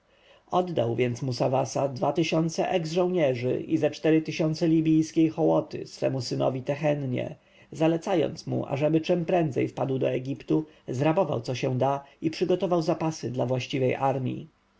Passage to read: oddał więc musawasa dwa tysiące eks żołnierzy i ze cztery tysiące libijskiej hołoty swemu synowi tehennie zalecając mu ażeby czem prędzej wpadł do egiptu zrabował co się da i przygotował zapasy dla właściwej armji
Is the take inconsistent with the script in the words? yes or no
no